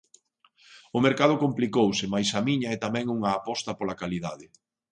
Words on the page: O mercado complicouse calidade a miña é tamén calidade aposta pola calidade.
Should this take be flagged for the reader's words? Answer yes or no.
yes